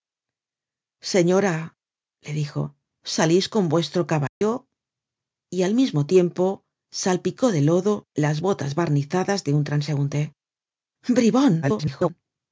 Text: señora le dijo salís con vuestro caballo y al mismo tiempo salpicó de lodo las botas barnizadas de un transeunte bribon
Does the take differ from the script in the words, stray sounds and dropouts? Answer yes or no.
yes